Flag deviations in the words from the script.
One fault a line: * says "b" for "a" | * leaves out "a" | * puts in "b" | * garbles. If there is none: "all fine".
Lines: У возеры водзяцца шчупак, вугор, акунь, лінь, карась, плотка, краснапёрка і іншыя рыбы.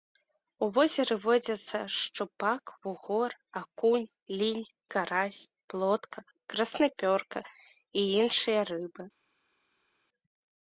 all fine